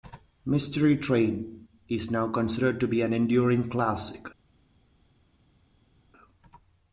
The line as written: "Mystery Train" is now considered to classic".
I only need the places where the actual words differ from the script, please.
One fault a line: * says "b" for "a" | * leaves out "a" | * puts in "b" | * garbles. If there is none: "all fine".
* puts in "be an enduring"